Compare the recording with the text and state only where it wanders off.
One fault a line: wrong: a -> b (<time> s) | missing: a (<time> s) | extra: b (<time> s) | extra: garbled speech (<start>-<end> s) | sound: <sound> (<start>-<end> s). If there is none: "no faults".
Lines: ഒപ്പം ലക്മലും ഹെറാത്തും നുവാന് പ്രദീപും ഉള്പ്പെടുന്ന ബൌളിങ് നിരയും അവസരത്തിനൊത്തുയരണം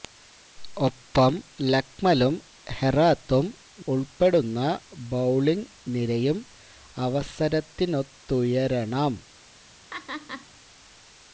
missing: നുവാന് പ്രദീപും (3.5 s)
sound: laugh (9.9-10.5 s)